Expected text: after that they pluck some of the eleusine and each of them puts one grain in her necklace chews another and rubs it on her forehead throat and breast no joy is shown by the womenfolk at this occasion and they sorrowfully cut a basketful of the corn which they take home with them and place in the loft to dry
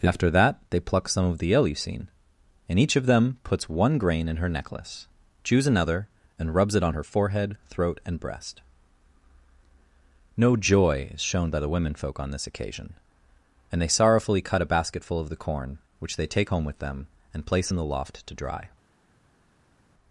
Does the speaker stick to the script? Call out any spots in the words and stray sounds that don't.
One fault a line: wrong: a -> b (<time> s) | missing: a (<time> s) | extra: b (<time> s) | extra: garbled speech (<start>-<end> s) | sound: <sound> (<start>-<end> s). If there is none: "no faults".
wrong: at -> on (12.2 s)